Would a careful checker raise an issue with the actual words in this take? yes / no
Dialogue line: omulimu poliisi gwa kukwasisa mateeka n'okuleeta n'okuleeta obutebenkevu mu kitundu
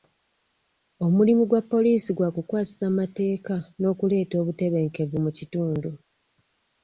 yes